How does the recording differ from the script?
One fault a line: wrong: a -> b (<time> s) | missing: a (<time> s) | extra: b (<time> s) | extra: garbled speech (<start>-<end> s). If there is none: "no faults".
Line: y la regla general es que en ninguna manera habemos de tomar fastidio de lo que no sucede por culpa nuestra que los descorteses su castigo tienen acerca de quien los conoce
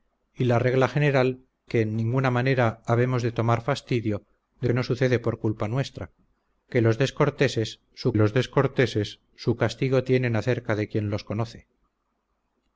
missing: es (1.4 s)
missing: lo (4.7 s)
extra: los descorteses su (8.1 s)